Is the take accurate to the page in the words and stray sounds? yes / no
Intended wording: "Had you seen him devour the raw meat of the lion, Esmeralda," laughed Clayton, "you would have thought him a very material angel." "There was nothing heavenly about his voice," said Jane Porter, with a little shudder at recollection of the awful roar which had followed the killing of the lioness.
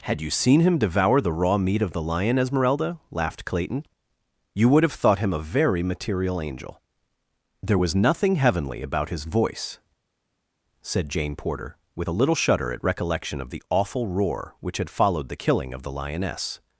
yes